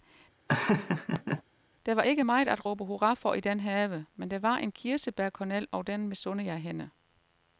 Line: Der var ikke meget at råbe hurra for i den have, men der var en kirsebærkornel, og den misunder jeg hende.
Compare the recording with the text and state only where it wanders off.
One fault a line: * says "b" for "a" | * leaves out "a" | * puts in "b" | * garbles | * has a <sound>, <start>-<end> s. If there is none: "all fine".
* has a laugh, 0.5-1.4 s